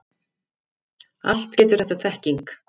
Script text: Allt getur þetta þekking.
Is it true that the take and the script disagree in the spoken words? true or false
false